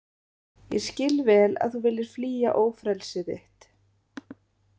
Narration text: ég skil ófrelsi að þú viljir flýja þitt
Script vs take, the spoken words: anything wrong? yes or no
yes